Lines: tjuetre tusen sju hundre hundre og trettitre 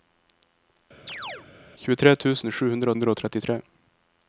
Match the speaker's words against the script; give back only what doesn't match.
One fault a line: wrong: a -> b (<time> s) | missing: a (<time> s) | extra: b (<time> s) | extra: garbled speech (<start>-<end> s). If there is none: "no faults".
no faults